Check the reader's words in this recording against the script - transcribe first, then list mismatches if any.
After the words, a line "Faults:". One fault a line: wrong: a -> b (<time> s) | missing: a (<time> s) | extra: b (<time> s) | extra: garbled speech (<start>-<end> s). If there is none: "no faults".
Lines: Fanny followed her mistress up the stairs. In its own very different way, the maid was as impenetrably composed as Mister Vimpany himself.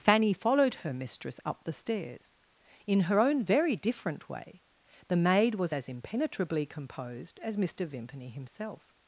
Fanny followed her mistress up the stairs. In her own very different way, the maid was as impenetrably composed as Mister Vimpany himself.
Faults:
wrong: its -> her (3.0 s)